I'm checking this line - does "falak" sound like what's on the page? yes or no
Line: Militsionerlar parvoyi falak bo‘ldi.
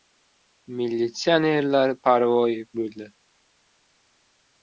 no